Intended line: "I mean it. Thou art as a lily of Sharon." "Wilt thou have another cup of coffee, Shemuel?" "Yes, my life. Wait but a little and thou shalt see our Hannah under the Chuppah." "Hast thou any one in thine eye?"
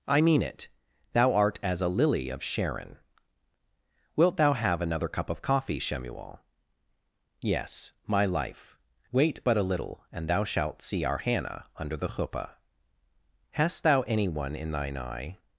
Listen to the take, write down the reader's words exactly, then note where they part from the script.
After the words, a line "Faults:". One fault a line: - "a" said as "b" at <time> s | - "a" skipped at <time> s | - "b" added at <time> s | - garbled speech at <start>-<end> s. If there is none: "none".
"I mean it. Thou art as a lily of Sharon." "Wilt thou have another cup of coffee, Shemuel?" "Yes, my life. Wait but a little and thou shalt see our Hannah under the Chuppah." "Hast thou any one in thine eye?"
Faults:
none